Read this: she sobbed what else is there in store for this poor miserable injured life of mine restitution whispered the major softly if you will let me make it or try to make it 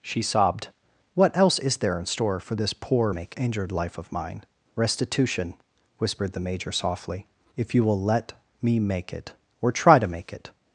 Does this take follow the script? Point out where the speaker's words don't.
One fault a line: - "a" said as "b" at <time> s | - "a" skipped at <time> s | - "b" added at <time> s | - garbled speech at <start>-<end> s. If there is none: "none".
- "miserable" said as "make" at 3.1 s